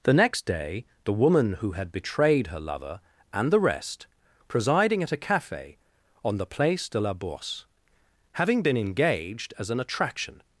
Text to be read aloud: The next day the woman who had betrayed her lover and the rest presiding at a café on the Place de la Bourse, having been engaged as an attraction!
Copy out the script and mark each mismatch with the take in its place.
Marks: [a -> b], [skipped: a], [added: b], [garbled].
The next day the woman who had betrayed her lover and the rest presiding at a café on the Place de la Bourse, having been engaged as an attraction!